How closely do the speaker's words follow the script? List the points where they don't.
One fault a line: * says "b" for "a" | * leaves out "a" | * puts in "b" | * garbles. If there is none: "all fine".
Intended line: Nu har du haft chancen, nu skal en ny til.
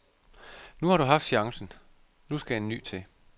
all fine